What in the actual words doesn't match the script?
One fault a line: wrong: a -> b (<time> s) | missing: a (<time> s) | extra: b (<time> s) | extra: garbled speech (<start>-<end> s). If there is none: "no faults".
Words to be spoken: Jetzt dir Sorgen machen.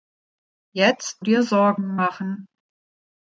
no faults